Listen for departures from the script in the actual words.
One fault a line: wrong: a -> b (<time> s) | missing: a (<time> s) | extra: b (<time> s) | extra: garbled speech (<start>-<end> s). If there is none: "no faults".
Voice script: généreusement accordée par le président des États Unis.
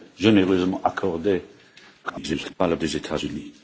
extra: garbled speech (2.0-2.5 s)
missing: président (2.8 s)